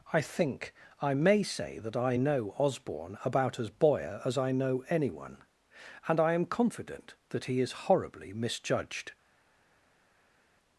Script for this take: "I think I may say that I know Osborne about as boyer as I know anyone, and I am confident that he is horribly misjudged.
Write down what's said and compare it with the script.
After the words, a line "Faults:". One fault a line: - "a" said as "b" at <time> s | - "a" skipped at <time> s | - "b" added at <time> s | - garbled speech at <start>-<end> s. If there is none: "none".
"I think I may say that I know Osborne about as boyer as I know anyone, and I am confident that he is horribly misjudged.
Faults:
none